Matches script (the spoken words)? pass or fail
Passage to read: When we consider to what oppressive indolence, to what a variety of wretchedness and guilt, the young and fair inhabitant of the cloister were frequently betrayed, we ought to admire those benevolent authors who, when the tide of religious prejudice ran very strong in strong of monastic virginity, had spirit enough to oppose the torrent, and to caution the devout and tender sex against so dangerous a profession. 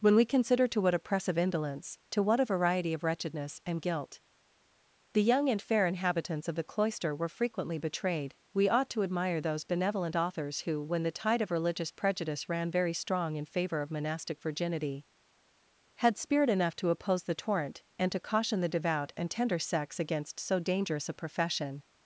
fail